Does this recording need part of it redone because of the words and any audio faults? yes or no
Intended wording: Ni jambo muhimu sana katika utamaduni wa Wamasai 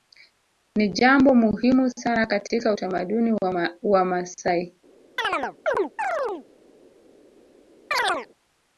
yes